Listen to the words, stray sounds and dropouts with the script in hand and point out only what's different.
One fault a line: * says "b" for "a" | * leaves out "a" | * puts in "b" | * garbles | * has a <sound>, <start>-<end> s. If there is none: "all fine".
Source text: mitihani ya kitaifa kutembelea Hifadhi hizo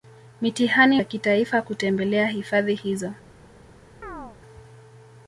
* has a chirp, 4.0-4.4 s